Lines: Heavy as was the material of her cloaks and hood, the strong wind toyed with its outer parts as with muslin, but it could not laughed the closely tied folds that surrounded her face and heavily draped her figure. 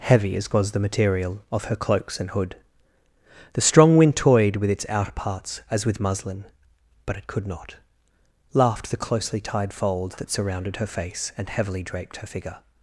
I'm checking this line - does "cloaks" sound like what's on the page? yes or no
yes